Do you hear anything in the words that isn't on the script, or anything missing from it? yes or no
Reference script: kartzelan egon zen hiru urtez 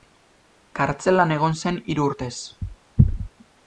no